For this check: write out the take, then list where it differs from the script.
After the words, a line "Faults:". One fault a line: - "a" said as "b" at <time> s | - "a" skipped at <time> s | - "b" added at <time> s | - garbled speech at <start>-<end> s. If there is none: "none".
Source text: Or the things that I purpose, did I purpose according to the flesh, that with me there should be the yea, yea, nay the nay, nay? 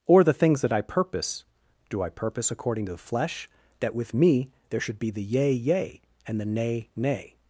Or the things that I purpose, do I purpose according to the flesh, that with me there should be the yea, yea, and the nay, nay?
Faults:
- "did" said as "do" at 1.9 s
- "nay" said as "and" at 6.3 s